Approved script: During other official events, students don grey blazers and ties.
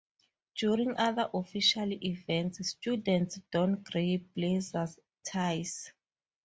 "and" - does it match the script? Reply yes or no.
no